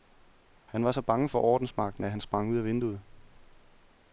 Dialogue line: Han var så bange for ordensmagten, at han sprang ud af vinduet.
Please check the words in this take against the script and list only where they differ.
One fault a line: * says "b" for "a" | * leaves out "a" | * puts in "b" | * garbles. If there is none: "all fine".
all fine